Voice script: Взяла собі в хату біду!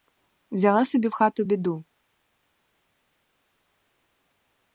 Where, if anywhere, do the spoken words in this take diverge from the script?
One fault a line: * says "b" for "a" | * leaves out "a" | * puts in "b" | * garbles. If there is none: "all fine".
all fine